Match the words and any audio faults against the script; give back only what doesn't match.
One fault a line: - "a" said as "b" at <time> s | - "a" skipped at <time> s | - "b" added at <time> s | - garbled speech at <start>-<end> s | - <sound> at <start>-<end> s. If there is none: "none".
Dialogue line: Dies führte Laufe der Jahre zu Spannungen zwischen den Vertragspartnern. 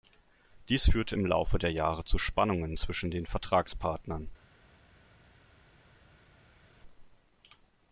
- "im" added at 1.1 s